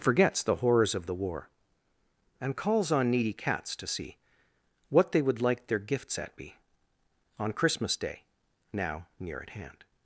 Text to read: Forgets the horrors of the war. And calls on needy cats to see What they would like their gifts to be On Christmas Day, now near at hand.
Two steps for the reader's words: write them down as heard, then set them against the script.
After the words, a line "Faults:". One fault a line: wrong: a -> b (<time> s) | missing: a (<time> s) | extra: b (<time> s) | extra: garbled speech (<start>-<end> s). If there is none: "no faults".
Forgets the horrors of the war. And calls on needy cats to see What they would like their gifts at be On Christmas Day, now near at hand.
Faults:
wrong: to -> at (6.2 s)